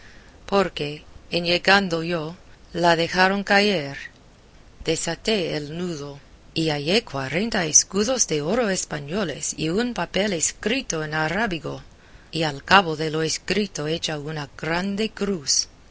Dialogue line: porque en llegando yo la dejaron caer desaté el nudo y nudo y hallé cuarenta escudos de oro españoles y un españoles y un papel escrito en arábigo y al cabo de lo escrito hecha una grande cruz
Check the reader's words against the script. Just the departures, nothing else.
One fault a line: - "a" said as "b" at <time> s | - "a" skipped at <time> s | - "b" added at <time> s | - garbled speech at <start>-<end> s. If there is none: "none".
- "nudo y" skipped at 6.7 s
- "españoles y un" skipped at 9.9 s